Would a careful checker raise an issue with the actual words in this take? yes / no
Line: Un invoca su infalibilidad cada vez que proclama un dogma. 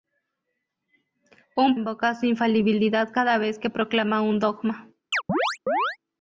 no